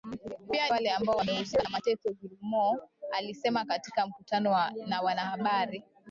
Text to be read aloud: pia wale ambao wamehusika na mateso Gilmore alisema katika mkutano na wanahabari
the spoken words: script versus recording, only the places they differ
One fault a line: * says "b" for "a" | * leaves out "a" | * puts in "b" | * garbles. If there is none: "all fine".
all fine